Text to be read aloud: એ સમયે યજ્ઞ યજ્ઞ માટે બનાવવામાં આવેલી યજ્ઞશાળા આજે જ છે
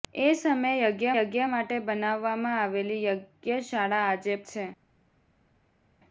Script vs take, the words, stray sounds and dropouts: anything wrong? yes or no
no